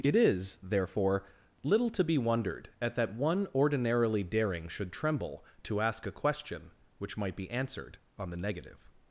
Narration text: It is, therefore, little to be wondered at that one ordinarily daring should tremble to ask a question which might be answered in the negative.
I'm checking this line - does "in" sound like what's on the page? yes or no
no